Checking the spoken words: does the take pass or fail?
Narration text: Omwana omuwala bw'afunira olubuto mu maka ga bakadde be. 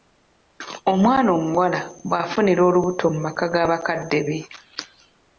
pass